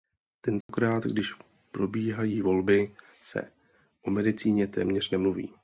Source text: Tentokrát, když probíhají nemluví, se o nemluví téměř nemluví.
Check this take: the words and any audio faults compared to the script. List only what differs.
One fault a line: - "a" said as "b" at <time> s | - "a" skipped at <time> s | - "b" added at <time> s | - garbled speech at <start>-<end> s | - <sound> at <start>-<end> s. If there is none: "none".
- dropout at 0.6-0.7 s
- "nemluví" said as "volby" at 2.4 s
- "nemluví" said as "medicíně" at 4.1 s